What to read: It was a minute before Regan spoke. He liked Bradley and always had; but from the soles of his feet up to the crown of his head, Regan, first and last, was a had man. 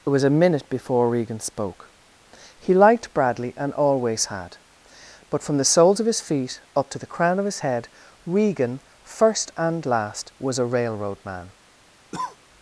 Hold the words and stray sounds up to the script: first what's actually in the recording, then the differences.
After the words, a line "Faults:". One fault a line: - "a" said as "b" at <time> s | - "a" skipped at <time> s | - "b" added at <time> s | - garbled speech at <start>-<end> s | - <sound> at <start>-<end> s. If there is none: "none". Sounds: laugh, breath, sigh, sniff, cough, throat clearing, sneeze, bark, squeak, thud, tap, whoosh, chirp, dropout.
It was a minute before Regan spoke. He liked Bradley and always had; but from the soles of his feet up to the crown of his head, Regan, first and last, was a railroad man.
Faults:
- "had" said as "railroad" at 10.7 s
- cough at 12.1-12.4 s